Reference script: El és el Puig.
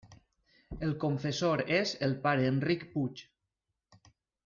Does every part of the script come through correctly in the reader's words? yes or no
no